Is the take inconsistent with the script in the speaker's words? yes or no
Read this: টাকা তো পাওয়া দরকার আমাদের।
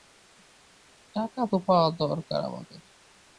no